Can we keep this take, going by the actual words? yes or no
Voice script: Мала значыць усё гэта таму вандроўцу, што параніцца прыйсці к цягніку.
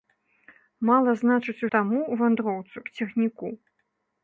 no